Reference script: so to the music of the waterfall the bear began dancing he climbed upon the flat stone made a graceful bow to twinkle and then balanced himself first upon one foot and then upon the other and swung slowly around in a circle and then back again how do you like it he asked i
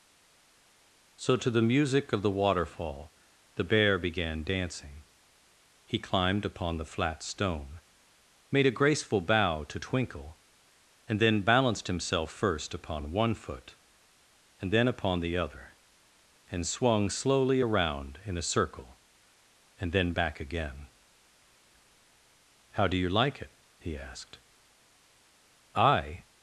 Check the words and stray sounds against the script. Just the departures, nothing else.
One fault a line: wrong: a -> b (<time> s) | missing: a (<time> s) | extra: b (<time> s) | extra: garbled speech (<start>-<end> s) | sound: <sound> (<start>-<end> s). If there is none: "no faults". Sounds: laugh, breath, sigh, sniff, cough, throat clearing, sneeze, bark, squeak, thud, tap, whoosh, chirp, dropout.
no faults